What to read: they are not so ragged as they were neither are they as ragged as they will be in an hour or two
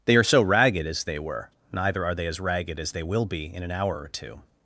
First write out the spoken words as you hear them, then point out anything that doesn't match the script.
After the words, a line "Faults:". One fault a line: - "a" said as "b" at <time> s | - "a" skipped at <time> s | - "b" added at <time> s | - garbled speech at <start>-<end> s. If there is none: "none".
they are so ragged as they were neither are they as ragged as they will be in an hour or two
Faults:
- "not" skipped at 0.2 s